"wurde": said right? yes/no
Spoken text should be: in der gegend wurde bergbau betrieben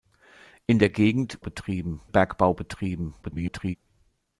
no